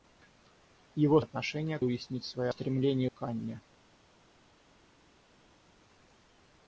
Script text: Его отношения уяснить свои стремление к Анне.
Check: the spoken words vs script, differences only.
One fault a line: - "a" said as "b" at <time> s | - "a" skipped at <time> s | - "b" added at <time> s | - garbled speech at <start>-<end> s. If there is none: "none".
none